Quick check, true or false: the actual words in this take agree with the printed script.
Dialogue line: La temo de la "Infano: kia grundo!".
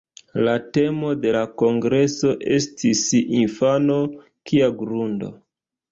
false